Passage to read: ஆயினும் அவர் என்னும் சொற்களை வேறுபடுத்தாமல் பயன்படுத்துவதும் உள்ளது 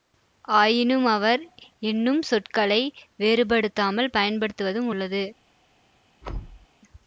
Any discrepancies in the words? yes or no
no